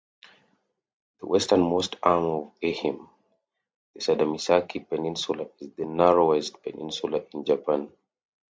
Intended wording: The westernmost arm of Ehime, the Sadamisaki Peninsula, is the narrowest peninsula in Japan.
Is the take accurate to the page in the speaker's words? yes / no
yes